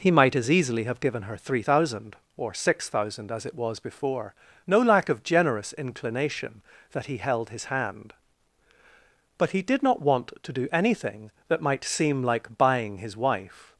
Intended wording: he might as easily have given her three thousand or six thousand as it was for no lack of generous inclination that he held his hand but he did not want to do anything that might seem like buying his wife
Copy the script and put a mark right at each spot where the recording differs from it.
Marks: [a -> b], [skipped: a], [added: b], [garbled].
he might as easily have given her three thousand or six thousand as it was [for -> before] no lack of generous inclination that he held his hand but he did not want to do anything that might seem like buying his wife